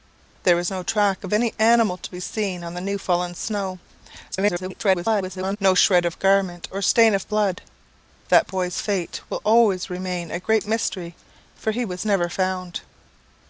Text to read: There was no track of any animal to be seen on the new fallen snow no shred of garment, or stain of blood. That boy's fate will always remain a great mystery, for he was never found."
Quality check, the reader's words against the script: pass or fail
fail